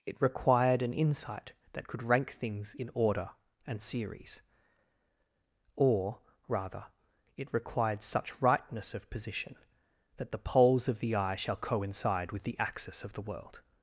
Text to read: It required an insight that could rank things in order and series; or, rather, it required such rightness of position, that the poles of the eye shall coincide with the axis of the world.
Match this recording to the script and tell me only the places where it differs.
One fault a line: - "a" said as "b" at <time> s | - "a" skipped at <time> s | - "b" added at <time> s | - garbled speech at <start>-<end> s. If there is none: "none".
none